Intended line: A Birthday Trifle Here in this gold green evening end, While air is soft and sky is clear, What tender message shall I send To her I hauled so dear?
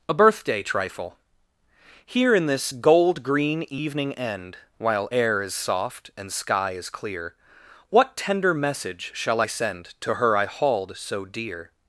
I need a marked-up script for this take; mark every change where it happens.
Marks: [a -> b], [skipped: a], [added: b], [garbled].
A Birthday Trifle Here in this gold green evening end, While air is soft and sky is clear, What tender message shall I send To her I hauled so dear?